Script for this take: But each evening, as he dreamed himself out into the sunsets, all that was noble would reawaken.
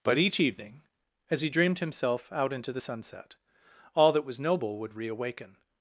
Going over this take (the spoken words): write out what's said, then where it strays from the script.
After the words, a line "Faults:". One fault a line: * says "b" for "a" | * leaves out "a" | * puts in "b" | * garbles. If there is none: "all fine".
But each evening, as he dreamed himself out into the sunset, all that was noble would reawaken.
Faults:
* says "sunset" for "sunsets"